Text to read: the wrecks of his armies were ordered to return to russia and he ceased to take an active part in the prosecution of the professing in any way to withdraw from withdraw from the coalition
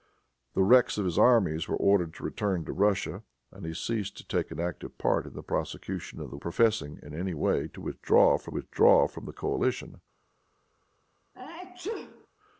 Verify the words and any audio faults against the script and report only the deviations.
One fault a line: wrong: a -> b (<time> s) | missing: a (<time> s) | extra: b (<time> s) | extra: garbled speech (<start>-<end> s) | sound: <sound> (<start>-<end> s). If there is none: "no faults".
sound: sneeze (11.3-12.3 s)